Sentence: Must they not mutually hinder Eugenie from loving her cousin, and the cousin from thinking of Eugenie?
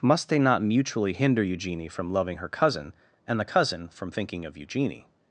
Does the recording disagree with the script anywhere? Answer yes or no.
no